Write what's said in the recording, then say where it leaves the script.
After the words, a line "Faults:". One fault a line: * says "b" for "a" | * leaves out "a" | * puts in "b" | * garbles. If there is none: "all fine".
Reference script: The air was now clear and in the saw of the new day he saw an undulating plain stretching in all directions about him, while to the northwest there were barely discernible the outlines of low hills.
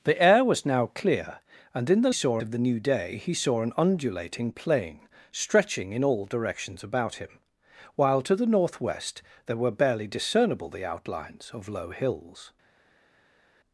The air was now clear and in the saw of the new day he saw an undulating plain stretching in all directions about him, while to the northwest there were barely discernible the outlines of low hills.
Faults:
all fine